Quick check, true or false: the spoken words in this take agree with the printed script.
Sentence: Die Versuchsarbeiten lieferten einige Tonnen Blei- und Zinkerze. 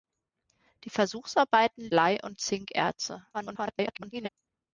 false